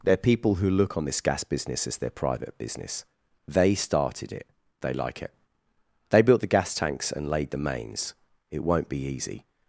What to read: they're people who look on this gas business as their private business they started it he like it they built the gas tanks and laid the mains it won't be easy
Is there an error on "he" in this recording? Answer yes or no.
yes